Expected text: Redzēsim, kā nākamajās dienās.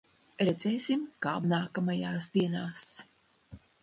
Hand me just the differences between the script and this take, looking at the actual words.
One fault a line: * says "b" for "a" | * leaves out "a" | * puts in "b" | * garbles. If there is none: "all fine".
all fine